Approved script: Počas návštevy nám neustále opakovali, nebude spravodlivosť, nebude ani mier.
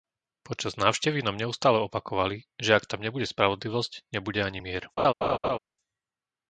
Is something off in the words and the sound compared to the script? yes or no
yes